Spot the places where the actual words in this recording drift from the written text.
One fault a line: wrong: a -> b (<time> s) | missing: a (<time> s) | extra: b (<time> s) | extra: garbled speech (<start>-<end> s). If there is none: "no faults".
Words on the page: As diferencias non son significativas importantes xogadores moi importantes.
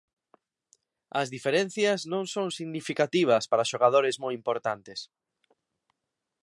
wrong: importantes -> para (3.5 s)